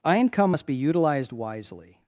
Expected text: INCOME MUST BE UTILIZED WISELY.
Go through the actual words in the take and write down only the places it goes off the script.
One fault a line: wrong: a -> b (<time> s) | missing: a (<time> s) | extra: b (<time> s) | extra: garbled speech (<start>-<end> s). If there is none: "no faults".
no faults